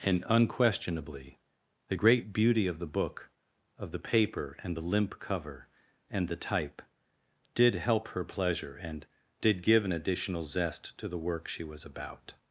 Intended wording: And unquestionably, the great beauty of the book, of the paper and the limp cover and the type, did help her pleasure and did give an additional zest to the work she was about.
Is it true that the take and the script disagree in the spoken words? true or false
false